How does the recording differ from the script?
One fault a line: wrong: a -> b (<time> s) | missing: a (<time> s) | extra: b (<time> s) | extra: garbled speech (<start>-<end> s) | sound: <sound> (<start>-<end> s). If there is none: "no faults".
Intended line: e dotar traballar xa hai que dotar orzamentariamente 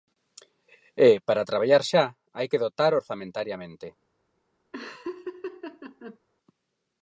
wrong: dotar -> para (1.3 s)
sound: laugh (4.7-6.2 s)